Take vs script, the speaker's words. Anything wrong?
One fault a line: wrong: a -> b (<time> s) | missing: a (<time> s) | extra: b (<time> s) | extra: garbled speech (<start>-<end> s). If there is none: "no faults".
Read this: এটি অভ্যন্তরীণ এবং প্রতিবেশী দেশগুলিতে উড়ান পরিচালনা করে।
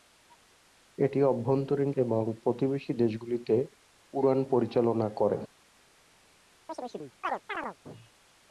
no faults